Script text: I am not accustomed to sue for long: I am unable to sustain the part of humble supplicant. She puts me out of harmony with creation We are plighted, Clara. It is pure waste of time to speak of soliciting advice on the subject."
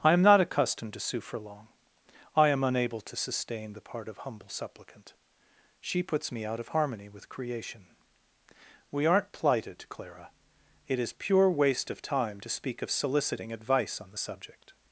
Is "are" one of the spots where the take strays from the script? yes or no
yes